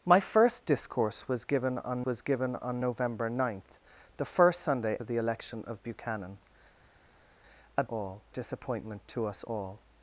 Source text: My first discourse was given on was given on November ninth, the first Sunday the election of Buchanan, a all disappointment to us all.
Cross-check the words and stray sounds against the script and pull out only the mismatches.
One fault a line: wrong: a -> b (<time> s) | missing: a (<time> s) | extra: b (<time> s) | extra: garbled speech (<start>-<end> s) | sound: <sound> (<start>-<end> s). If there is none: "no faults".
no faults